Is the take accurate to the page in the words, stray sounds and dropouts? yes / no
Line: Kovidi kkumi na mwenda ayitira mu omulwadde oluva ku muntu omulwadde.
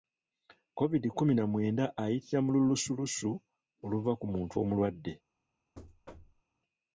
no